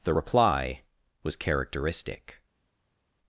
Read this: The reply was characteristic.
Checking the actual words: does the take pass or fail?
pass